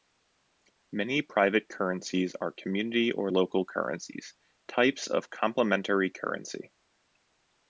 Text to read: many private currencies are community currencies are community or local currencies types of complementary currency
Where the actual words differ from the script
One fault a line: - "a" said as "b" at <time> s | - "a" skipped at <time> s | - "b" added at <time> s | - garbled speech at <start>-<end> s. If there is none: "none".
- "currencies are community" skipped at 3.1 s